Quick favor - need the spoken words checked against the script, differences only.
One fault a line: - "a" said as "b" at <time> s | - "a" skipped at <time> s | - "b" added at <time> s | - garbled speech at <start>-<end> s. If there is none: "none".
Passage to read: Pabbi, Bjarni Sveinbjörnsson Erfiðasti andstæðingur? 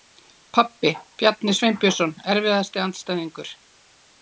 none